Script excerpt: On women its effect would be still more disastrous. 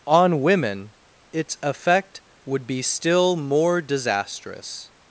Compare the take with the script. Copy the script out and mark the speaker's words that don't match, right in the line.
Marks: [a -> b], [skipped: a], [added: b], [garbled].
On women its effect would be still more disastrous.